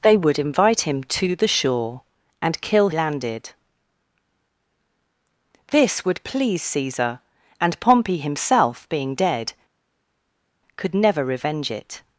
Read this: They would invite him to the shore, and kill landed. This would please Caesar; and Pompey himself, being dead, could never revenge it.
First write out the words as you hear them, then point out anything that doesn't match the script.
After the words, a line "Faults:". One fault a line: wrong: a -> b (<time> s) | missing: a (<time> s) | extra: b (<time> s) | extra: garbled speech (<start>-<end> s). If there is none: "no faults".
They would invite him to the shore, and kill landed. This would please Caesar; and Pompey himself, being dead, could never revenge it.
Faults:
no faults